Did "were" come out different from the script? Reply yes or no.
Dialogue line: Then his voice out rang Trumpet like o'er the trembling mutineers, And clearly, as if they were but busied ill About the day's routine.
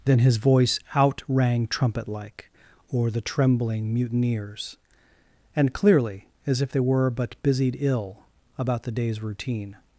no